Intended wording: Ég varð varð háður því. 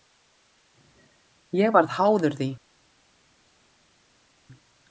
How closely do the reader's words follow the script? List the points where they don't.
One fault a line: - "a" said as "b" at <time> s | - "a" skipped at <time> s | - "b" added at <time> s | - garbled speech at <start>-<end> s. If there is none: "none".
- "varð" skipped at 1.9 s